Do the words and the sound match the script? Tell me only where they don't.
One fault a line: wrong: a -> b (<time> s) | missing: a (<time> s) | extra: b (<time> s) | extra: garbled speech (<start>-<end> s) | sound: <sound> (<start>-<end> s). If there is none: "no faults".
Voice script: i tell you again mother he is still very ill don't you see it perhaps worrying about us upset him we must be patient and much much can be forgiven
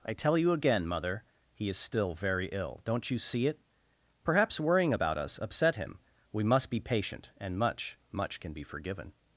no faults